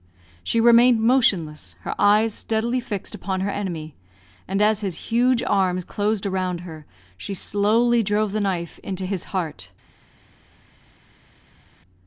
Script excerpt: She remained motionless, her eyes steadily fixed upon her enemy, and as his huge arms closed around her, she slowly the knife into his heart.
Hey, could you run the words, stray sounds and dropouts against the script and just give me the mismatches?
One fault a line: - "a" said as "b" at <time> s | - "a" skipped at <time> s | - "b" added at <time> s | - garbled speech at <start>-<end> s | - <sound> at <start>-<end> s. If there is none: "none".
- "drove" added at 8.0 s